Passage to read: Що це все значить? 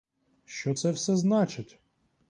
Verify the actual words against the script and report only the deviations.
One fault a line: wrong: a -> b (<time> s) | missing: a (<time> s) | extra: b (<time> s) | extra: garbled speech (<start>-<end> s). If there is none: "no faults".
no faults